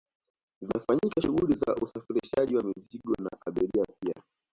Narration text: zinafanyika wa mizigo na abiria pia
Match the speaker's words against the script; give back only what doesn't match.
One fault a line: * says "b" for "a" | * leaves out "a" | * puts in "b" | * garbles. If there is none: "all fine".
* puts in "shughuli za usafirishaji"